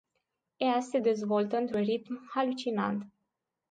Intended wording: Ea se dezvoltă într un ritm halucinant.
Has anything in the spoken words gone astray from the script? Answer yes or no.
no